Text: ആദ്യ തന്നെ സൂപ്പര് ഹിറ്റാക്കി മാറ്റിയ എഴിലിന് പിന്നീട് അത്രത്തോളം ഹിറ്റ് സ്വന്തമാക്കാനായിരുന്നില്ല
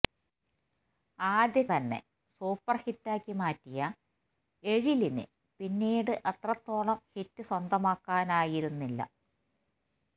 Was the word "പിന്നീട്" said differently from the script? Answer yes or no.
no